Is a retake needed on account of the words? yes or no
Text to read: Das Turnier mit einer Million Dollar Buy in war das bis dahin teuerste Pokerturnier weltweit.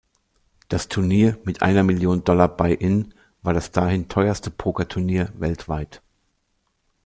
yes